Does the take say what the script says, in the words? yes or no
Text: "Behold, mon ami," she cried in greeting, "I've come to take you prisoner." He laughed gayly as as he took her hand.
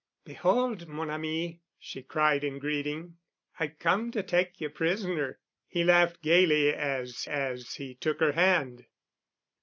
yes